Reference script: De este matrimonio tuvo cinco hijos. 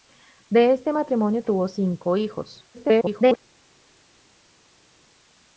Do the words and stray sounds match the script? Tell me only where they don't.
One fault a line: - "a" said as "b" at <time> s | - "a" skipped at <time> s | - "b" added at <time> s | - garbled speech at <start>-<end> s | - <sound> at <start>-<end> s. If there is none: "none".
- garbled speech at 2.7-3.4 s